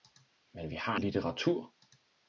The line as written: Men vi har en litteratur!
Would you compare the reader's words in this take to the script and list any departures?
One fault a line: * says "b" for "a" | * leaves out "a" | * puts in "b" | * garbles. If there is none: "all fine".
* leaves out "en"